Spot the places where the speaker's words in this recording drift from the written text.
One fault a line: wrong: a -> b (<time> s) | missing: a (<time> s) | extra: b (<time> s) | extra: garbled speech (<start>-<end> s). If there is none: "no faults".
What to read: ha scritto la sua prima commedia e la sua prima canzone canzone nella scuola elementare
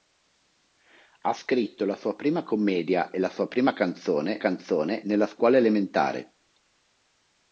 no faults